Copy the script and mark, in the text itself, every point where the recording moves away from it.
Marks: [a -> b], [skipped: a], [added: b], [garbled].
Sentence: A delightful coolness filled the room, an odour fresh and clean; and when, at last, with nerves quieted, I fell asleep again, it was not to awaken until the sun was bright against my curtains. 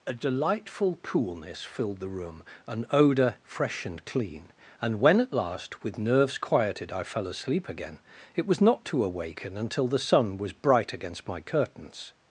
A delightful coolness filled the room, an odour fresh and clean; and when, at last, with nerves quieted, I fell asleep again, it was not to awaken until the sun was bright against my curtains.